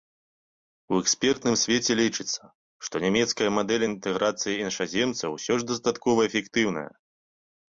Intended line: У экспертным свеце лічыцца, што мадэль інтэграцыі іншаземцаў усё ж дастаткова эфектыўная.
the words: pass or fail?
fail